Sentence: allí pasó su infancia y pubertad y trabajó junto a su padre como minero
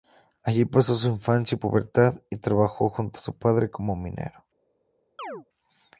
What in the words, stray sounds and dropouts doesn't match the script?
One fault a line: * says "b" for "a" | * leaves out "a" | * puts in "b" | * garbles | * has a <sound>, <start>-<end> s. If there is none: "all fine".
* has a chirp, 5.2-5.5 s